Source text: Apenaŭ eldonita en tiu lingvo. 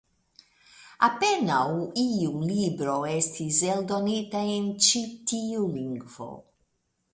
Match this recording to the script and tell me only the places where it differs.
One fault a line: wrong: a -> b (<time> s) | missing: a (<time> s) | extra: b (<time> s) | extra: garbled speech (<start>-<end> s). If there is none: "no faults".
extra: iu libro estis (2.0 s)
extra: ĉi (4.9 s)